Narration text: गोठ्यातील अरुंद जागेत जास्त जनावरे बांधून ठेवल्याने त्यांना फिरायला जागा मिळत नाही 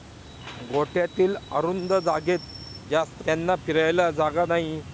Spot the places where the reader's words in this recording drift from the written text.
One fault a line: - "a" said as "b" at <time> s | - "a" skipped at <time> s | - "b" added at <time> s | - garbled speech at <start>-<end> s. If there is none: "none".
- "जनावरे बांधून ठेवल्याने" skipped at 3.2 s
- "मिळत" skipped at 4.5 s